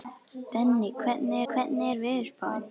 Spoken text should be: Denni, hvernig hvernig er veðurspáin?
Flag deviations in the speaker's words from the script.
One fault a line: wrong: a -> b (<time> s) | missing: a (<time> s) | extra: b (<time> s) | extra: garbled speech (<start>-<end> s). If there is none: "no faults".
no faults